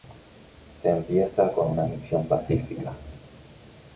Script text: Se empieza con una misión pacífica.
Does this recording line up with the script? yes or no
yes